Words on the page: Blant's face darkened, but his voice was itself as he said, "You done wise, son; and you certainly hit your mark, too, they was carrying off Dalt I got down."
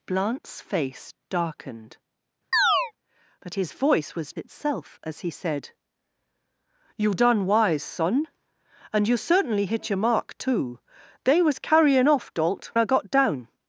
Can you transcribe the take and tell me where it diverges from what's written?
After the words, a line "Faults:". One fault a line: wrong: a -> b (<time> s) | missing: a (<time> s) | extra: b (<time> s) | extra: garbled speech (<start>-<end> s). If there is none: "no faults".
Blant's face darkened, but his voice was itself as he said, "You done wise, son; and you certainly hit your mark, too, they was carrying off Dalt I got down."
Faults:
no faults